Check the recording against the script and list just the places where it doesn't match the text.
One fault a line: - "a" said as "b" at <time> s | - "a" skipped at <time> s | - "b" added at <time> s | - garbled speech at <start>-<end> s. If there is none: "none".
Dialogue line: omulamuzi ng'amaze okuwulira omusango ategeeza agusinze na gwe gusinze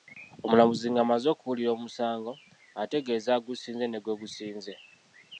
- "na" said as "ne" at 3.9 s